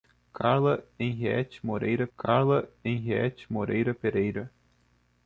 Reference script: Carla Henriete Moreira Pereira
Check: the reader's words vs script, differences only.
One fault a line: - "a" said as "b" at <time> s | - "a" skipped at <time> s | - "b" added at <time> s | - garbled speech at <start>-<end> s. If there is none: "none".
- "carla Henriete Moreira" added at 2.2 s